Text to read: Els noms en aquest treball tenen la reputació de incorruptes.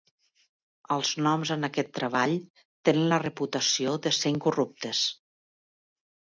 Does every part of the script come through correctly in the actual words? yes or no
no